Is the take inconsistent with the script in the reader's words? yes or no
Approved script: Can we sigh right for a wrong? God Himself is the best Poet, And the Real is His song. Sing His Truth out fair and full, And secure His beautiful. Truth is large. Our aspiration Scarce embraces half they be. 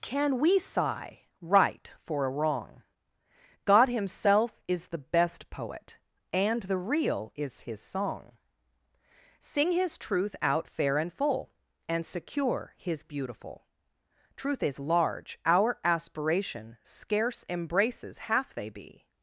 no